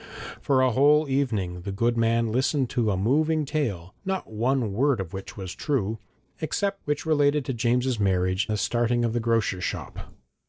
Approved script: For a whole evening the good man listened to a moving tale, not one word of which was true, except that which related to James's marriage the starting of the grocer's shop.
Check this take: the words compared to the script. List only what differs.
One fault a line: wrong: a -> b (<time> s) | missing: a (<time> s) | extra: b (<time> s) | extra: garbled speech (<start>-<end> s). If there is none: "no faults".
no faults